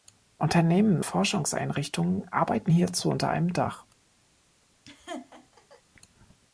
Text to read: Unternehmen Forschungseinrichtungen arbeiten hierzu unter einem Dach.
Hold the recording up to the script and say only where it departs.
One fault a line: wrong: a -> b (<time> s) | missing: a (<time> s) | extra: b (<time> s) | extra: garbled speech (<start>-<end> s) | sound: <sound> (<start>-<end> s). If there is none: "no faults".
sound: laugh (4.9-5.8 s)